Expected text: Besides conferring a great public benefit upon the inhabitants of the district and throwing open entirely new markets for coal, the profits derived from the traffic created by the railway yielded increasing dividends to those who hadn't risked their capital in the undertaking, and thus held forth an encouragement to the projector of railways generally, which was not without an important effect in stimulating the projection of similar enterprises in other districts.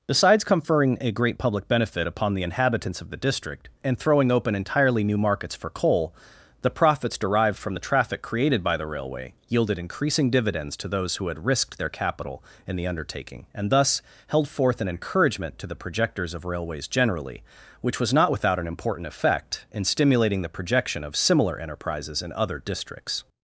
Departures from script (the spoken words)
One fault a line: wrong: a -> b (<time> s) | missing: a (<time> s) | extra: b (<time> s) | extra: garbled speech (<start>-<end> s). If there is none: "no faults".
wrong: hadn't -> had (11.3 s)
wrong: projector -> projectors (15.8 s)